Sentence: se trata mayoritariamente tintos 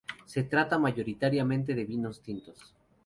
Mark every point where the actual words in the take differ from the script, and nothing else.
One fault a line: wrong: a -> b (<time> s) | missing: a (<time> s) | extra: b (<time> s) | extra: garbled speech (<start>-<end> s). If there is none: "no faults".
extra: de vinos (1.8 s)